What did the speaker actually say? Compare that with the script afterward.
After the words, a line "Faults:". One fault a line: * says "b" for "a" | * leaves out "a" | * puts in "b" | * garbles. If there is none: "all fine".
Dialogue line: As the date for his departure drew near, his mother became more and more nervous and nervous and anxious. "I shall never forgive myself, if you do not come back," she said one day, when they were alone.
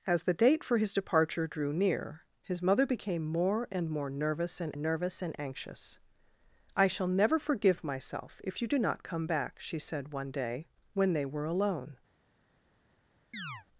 As the date for his departure drew near, his mother became more and more nervous and nervous and anxious. "I shall never forgive myself, if you do not come back," she said one day, when they were alone.
Faults:
all fine